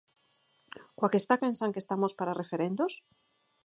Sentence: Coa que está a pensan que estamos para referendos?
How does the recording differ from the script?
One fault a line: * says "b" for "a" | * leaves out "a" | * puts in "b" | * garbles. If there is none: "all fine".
all fine